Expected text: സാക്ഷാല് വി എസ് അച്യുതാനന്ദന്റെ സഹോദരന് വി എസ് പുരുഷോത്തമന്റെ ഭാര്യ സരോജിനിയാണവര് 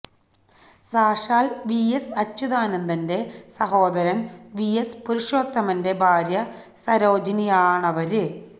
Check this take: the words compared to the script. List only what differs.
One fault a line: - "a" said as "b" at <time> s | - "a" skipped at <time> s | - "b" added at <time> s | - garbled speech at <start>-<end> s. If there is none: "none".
none